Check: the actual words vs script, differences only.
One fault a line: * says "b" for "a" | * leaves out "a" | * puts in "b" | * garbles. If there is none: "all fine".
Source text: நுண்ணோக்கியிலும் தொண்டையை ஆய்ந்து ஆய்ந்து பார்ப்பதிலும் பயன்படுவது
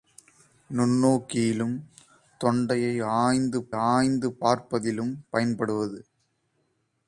all fine